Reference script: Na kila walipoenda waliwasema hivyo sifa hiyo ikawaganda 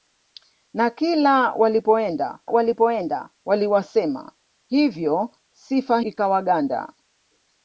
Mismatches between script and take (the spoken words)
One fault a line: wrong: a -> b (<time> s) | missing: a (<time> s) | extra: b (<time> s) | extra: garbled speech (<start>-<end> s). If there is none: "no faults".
extra: walipoenda (2.5 s)
missing: hiyo (6.0 s)